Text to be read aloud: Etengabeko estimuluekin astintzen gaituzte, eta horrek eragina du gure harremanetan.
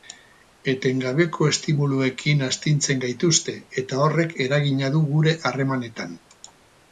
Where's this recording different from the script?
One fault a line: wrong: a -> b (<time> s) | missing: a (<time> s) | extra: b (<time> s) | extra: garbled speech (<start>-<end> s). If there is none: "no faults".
no faults